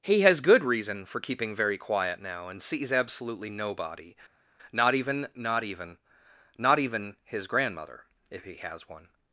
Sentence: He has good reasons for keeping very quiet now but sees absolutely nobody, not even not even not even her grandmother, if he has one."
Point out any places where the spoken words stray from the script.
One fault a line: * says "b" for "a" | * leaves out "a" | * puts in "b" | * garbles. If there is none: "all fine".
* says "reason" for "reasons"
* says "and" for "but"
* says "his" for "her"